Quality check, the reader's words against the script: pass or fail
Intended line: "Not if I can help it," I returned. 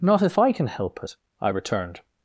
pass